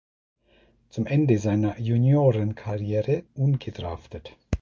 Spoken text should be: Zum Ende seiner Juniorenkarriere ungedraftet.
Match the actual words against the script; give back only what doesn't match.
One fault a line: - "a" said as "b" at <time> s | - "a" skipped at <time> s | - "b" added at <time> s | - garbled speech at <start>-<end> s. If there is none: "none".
none